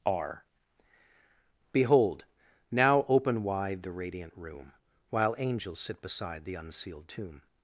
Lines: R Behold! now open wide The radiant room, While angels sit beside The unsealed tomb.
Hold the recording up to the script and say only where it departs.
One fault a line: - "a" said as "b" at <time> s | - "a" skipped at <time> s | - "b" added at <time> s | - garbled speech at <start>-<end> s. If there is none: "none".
none